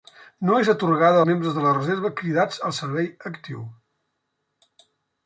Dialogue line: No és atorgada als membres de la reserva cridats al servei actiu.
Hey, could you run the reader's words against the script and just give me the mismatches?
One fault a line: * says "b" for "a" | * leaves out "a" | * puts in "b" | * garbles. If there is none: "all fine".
* leaves out "als"